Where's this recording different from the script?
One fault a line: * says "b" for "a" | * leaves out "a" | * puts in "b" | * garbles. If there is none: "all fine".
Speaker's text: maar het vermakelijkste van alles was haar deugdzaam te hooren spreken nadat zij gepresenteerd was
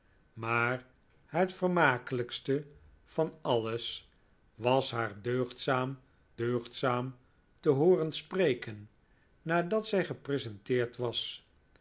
* puts in "deugdzaam"